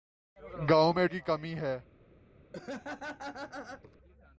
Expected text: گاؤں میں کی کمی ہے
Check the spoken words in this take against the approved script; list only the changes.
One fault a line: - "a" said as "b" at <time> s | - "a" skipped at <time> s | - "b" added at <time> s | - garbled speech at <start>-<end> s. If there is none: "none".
none